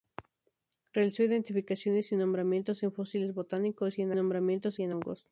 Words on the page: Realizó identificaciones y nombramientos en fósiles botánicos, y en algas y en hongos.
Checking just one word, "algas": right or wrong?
wrong